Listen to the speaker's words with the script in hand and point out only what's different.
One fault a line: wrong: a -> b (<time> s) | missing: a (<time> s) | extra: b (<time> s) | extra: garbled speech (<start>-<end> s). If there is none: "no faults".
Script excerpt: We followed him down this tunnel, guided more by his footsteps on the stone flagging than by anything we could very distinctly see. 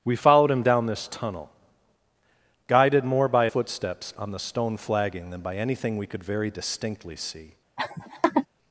missing: his (3.5 s)